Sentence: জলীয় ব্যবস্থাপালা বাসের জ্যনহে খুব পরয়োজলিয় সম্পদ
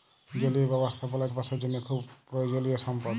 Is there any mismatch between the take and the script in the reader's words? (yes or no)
no